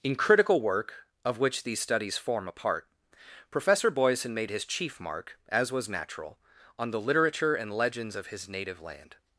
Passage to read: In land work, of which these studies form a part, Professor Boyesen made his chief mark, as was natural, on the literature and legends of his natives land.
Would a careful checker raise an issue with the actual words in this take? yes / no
yes